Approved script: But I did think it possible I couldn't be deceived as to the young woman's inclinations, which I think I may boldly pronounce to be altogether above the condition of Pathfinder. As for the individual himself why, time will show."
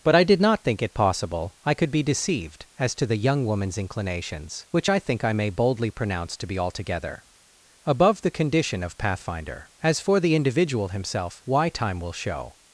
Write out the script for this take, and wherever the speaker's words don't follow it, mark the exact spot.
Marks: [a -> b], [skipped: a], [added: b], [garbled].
But I did [added: not] think it possible I [couldn't -> could] be deceived as to the young woman's inclinations, which I think I may boldly pronounce to be altogether above the condition of Pathfinder. As for the individual himself why, time will show."